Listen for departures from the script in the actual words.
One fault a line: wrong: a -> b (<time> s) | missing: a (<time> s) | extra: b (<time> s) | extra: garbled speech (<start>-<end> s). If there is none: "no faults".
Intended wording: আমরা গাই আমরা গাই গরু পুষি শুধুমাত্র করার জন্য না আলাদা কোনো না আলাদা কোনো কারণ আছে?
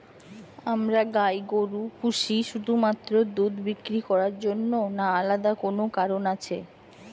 missing: আমরা গাই (1.4 s)
extra: দুধ বিক্রি (3.4 s)
missing: না আলাদা কোনো (5.8 s)